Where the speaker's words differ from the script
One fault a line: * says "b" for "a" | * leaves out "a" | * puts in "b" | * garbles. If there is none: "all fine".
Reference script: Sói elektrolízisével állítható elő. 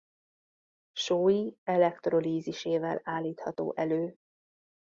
all fine